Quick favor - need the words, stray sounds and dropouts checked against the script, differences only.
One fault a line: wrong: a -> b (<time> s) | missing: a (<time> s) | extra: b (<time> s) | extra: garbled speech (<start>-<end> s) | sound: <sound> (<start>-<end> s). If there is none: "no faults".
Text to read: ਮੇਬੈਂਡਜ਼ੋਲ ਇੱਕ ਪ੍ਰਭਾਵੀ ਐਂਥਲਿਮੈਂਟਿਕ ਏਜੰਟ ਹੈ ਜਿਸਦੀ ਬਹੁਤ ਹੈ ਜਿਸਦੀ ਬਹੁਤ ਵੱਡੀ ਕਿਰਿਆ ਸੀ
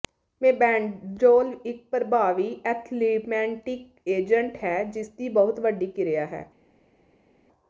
missing: ਹੈ ਜਿਸਦੀ ਬਹੁਤ (5.6 s)
wrong: ਸੀ -> ਹੈ (6.3 s)